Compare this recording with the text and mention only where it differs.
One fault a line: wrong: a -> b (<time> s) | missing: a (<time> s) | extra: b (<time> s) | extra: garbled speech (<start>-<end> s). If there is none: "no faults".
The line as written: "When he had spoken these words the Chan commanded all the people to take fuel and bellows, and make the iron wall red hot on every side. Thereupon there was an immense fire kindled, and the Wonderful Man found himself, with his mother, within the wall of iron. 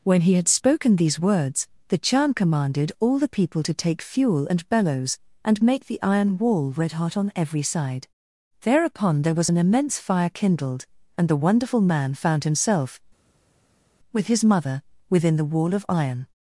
no faults